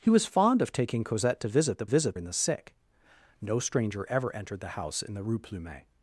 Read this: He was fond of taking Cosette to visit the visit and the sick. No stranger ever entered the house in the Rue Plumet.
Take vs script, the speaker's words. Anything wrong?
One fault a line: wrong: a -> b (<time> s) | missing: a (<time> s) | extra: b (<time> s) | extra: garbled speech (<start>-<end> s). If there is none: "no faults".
no faults